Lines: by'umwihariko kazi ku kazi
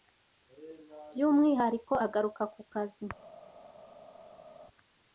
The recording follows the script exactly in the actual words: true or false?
false